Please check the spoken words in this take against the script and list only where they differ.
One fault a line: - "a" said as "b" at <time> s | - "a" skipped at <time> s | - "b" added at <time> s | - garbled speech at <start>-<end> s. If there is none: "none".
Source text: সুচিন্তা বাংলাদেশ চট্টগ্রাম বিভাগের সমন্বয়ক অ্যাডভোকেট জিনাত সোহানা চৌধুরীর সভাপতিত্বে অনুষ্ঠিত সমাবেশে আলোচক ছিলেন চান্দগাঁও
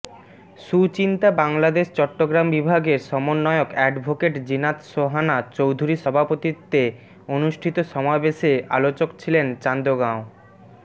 none